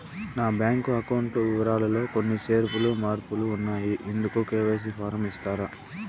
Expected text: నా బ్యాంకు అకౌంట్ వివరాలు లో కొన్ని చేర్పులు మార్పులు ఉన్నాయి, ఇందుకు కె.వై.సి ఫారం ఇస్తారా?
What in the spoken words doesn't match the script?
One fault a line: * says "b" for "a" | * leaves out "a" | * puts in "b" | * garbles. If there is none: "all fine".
all fine